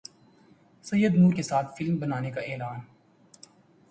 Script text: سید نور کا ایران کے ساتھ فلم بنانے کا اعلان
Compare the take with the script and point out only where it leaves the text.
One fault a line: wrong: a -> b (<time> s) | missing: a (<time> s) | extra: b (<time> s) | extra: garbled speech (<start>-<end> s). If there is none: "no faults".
missing: کا ایران (1.3 s)